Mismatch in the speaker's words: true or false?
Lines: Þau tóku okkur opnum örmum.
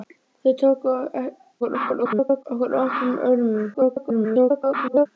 true